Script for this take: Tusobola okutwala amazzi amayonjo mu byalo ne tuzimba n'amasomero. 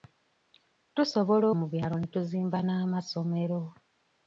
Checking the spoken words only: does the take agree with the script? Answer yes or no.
no